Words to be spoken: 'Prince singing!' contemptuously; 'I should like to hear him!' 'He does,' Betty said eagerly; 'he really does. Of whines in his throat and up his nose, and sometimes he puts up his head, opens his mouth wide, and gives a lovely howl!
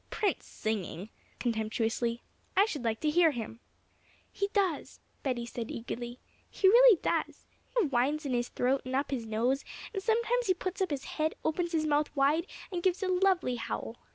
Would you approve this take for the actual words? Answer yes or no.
yes